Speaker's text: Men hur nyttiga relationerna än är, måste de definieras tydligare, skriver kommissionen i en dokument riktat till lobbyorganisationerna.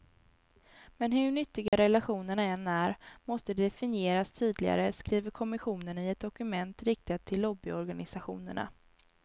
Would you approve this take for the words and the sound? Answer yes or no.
no